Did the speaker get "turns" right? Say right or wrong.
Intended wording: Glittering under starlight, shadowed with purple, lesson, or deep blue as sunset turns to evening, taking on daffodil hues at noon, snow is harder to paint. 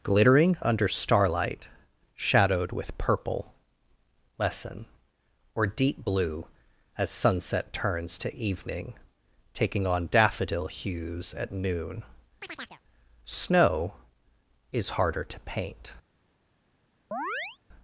right